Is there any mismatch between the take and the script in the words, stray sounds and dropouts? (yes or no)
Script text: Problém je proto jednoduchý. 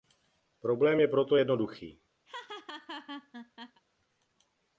yes